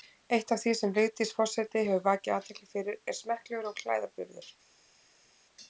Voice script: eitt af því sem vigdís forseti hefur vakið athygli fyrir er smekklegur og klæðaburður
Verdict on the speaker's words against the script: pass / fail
pass